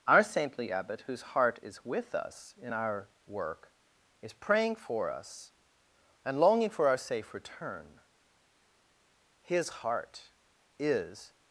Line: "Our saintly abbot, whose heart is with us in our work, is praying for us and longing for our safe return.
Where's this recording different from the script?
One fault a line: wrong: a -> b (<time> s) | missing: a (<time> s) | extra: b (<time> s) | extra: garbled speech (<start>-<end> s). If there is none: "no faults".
extra: His heart is (9.4 s)